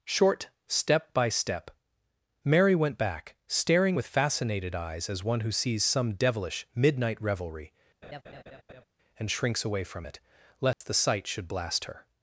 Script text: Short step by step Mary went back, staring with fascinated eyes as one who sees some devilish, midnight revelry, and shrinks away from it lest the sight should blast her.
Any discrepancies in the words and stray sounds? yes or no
yes